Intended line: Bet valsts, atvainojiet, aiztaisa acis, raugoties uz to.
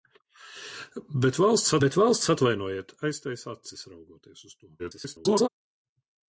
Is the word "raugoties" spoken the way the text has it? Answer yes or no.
yes